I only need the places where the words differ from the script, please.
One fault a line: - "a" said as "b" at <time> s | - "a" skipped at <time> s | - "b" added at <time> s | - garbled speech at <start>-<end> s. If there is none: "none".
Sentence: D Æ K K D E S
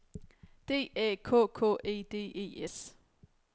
- "E" added at 1.8 s